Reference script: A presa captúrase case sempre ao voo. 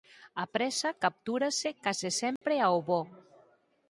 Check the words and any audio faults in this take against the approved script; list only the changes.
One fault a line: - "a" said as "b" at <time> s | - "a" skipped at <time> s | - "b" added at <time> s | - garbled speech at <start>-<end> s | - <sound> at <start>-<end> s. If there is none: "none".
- dropout at 2.4-2.4 s